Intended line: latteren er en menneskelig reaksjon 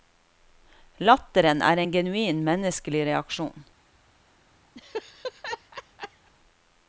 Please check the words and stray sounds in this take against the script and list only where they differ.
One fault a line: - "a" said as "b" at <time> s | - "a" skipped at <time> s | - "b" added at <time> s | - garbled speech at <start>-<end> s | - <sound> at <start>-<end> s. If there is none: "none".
- "genuin" added at 2.0 s
- laugh at 4.8-6.3 s